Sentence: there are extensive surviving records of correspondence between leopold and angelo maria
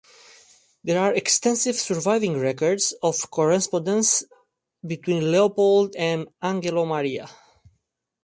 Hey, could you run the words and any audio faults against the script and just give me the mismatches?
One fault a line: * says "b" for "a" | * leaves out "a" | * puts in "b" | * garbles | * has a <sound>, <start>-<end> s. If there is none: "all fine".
all fine